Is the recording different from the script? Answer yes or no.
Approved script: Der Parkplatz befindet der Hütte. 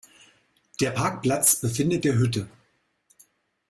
no